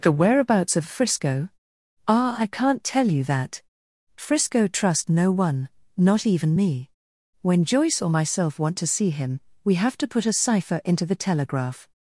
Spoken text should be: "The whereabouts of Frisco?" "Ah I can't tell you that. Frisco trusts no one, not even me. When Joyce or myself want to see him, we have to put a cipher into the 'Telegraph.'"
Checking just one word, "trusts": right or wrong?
wrong